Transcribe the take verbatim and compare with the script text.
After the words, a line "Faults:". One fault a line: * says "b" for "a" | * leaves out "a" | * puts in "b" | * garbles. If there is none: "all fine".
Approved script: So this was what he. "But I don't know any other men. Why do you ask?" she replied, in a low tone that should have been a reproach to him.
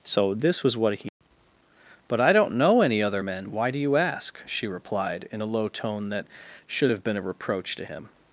So this was what he. "But I don't know any other men. Why do you ask?" she replied, in a low tone that should have been a reproach to him.
Faults:
all fine